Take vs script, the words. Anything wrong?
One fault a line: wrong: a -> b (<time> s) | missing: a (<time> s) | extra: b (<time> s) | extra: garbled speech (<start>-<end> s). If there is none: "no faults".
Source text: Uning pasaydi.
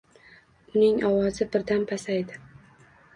extra: ovozi birdan (1.1 s)